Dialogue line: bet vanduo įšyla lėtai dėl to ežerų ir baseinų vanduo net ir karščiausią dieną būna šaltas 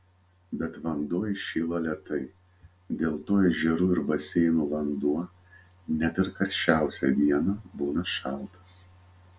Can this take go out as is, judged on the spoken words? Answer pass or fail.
pass